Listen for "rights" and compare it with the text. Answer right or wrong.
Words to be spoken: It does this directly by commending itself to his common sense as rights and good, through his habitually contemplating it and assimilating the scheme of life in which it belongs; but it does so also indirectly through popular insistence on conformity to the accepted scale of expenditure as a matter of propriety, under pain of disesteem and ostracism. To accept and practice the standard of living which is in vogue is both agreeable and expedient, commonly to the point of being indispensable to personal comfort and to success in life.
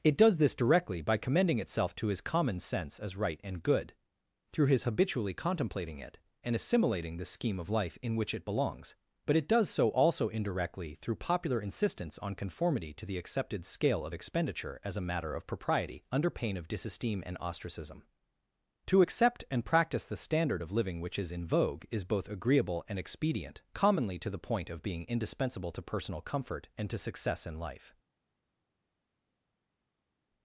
wrong